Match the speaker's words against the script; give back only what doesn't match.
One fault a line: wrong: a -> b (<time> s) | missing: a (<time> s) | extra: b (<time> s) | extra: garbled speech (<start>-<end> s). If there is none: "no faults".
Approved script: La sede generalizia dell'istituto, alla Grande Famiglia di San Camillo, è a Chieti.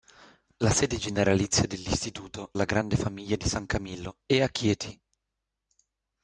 no faults